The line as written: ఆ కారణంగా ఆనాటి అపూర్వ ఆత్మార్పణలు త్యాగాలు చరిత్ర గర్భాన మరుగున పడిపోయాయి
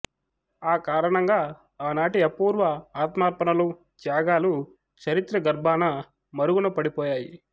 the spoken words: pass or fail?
pass